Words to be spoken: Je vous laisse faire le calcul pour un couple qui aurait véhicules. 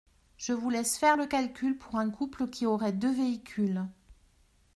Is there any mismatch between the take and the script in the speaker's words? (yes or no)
yes